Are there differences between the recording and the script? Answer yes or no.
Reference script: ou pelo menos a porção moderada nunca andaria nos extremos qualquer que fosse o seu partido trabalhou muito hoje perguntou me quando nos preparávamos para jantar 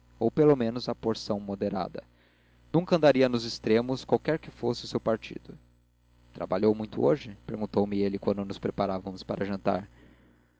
yes